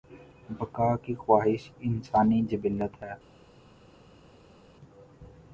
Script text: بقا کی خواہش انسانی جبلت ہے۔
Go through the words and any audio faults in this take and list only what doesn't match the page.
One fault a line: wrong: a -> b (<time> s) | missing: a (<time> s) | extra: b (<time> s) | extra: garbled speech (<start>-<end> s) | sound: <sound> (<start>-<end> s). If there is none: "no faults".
no faults